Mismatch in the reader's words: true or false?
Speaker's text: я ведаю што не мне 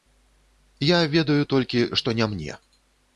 true